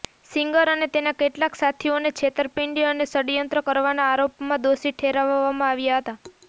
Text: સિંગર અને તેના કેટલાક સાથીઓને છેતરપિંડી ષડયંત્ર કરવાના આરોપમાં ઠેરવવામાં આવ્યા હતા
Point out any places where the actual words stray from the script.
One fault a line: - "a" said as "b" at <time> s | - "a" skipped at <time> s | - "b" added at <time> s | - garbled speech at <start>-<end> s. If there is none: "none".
- "અને" added at 2.9 s
- "દોષી" added at 4.7 s